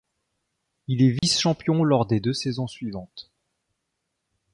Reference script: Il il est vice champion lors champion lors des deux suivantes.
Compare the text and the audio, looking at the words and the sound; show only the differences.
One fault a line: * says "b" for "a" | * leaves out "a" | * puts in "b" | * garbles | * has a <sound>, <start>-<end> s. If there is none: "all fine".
* leaves out "il"
* has a dropout, 1.2-1.2 s
* leaves out "champion lors"
* puts in "saisons"